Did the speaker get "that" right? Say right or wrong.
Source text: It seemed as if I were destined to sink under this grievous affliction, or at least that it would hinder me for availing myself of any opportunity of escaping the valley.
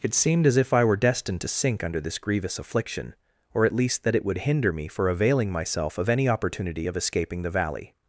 right